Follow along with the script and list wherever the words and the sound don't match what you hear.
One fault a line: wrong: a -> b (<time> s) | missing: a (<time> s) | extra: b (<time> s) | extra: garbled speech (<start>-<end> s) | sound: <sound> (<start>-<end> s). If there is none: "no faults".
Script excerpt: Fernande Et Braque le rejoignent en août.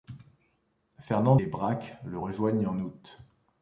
no faults